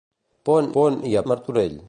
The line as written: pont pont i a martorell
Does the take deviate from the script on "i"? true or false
false